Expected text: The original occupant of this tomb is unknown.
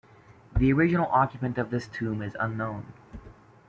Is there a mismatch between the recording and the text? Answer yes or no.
no